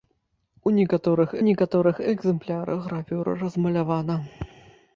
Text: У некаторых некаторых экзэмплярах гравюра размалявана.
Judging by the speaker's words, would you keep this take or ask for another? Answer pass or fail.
pass